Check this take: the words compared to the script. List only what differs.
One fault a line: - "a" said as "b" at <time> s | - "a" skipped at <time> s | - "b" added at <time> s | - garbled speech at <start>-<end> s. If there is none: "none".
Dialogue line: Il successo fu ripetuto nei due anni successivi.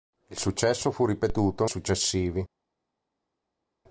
- "nei due anni" skipped at 1.6 s